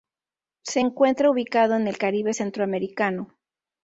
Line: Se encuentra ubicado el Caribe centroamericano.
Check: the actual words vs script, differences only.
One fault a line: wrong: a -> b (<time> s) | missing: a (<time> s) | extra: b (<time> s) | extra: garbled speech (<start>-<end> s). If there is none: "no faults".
extra: en (1.8 s)